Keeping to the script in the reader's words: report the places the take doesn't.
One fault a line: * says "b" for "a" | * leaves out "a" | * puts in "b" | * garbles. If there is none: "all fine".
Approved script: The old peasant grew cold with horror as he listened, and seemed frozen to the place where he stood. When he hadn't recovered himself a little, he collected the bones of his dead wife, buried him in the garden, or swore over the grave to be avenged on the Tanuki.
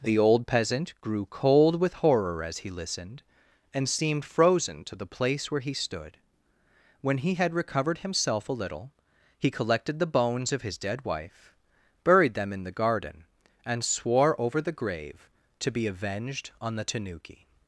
* says "had" for "hadn't"
* says "them" for "him"
* says "and" for "or"